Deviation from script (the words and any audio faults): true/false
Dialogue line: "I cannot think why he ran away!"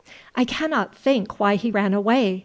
false